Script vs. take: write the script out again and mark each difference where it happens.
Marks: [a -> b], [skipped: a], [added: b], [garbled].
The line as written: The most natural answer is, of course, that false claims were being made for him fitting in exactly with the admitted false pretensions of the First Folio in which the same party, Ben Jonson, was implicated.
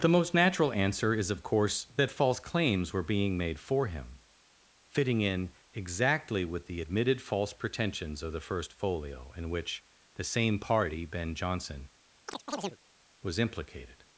The most natural answer is, of course, that false claims were being made for him fitting in exactly with the admitted false pretensions of the First Folio in which the same party, Ben Jonson, was implicated.